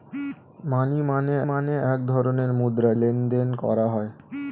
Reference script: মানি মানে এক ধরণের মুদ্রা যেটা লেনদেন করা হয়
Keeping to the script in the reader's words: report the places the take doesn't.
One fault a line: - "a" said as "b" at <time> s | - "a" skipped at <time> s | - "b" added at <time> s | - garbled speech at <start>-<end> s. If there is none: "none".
- "মানে" added at 1.5 s
- "যেটা" skipped at 2.9 s